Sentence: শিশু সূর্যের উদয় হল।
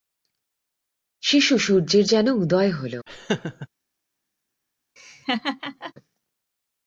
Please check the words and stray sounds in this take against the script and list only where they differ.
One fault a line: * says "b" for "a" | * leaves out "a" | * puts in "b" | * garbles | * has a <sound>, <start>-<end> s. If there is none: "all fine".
* puts in "যেন"
* has a laugh, 3.1-3.7 s
* has a laugh, 5.0-5.9 s